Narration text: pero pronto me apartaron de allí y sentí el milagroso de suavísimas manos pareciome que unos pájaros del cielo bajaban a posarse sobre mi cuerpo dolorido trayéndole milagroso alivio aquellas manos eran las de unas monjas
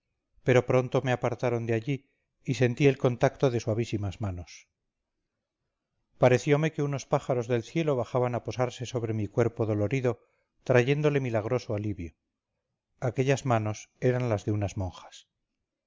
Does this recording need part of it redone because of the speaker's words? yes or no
yes